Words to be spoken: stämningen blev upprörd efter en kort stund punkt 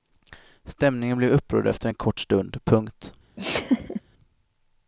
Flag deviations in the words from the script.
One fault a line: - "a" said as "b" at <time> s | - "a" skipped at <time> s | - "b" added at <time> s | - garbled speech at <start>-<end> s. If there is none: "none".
none